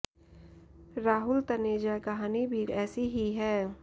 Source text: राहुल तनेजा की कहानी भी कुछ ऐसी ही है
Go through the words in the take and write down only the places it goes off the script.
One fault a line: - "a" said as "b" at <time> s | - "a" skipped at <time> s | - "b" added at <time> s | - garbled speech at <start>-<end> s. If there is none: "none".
- "की" skipped at 2.0 s
- "कुछ" skipped at 2.6 s